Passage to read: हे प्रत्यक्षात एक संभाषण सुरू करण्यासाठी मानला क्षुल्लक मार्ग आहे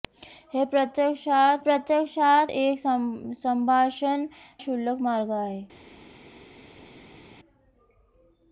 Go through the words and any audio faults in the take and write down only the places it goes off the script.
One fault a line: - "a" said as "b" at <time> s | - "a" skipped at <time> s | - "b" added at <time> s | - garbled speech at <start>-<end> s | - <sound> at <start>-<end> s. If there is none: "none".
- "प्रत्यक्षात" added at 1.6 s
- "सुरू करण्यासाठी मानला" skipped at 4.2 s